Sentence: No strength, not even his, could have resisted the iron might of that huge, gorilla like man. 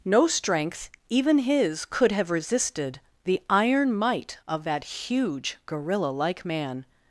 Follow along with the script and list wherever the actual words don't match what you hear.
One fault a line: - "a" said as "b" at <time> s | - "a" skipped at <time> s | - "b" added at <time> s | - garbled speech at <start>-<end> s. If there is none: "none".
- "not" skipped at 0.9 s